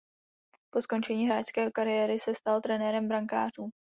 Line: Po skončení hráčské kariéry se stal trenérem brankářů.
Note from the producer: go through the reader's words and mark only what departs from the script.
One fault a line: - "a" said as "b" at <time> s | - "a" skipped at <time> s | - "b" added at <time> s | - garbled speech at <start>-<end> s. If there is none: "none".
none